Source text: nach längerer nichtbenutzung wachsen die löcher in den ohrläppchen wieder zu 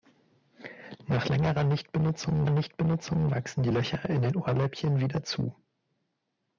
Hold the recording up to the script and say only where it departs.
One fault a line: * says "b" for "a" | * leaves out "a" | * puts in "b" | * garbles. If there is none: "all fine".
* puts in "nichtbenutzung"